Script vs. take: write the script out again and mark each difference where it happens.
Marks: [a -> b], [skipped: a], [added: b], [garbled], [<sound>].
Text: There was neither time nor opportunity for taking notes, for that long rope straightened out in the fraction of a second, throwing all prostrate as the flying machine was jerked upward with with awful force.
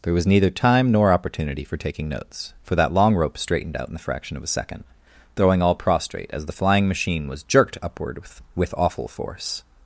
There was neither time nor opportunity for taking notes, for that long rope straightened out in the fraction of a second, throwing all prostrate as the flying machine was jerked upward with with awful force.